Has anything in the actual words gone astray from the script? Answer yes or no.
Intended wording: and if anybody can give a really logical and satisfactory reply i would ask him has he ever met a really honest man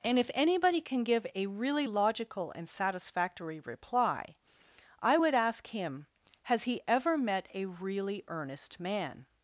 yes